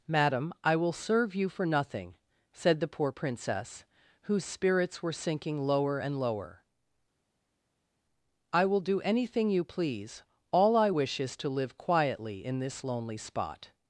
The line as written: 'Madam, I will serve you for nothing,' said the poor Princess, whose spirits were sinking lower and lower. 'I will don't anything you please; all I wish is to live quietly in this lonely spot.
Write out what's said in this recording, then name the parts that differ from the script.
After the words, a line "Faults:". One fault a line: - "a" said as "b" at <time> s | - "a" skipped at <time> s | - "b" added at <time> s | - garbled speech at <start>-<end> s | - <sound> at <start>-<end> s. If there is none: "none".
'Madam, I will serve you for nothing,' said the poor Princess, whose spirits were sinking lower and lower. 'I will do anything you please; all I wish is to live quietly in this lonely spot.
Faults:
- "don't" said as "do" at 8.8 s